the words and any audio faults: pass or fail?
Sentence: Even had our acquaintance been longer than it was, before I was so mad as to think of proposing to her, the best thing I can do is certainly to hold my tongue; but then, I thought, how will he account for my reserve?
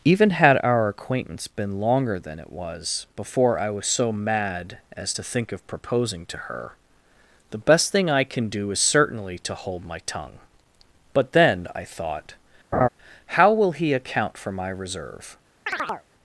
fail